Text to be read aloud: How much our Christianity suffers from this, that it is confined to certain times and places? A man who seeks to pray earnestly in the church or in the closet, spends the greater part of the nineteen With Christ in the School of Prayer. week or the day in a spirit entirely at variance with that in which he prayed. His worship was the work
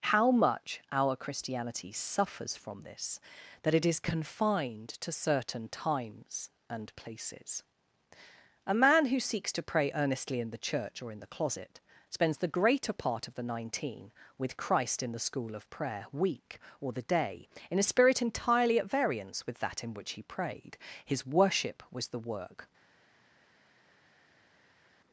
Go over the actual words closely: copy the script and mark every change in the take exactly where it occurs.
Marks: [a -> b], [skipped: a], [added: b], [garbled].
How much our Christianity suffers from this, that it is confined to certain times and places? A man who seeks to pray earnestly in the church or in the closet, spends the greater part of the nineteen With Christ in the School of Prayer. week or the day in a spirit entirely at variance with that in which he prayed. His worship was the work